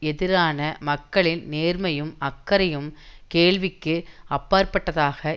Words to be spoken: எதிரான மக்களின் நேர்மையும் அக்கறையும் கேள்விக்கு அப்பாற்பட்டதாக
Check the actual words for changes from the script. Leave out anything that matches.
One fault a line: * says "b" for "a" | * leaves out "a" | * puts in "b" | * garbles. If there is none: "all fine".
all fine